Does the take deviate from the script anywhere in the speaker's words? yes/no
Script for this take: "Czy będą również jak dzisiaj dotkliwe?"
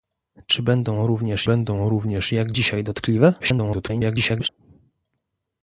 yes